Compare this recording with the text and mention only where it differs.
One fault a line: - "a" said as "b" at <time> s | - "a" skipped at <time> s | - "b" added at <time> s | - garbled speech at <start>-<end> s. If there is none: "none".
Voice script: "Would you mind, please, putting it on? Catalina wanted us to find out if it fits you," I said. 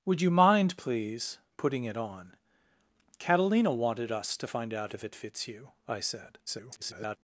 - garbled speech at 6.5-7.2 s